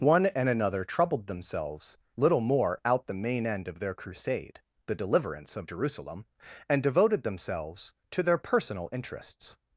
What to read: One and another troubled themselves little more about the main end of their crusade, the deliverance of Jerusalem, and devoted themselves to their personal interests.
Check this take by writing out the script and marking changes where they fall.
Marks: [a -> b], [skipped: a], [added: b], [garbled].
One and another troubled themselves little more [about -> out] the main end of their crusade, the deliverance of Jerusalem, and devoted themselves to their personal interests.